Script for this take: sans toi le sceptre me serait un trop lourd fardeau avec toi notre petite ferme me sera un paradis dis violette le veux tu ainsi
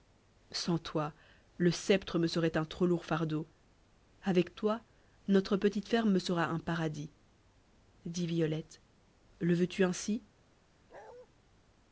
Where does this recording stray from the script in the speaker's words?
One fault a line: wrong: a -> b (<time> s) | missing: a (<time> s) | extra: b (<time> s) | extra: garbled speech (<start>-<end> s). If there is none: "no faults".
no faults